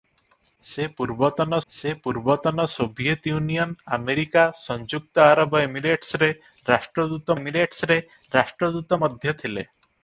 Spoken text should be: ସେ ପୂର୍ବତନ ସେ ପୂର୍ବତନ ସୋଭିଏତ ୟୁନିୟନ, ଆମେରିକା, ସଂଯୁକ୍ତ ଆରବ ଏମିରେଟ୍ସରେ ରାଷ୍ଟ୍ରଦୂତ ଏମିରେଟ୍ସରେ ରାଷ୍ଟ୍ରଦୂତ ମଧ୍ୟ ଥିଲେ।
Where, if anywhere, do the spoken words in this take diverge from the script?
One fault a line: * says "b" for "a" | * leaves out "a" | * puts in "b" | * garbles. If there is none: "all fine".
all fine